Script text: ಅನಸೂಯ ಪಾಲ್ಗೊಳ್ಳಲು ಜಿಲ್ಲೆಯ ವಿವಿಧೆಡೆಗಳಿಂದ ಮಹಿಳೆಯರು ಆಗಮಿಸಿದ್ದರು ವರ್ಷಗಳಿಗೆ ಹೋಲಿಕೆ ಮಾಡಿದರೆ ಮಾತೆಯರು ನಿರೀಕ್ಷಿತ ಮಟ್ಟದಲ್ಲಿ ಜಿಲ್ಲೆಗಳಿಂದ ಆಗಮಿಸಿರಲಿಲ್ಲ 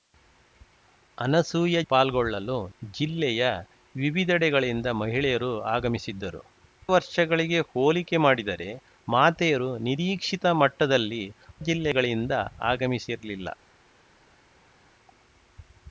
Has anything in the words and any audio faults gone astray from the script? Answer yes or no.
no